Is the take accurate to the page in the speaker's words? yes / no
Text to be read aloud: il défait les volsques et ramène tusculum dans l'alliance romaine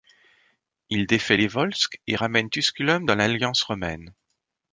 yes